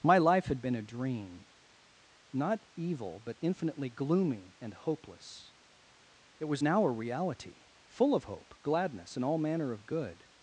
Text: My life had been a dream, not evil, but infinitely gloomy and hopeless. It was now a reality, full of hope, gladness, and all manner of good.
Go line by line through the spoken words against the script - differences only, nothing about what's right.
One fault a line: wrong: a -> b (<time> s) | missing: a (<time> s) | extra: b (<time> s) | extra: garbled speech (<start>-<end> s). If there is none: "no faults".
no faults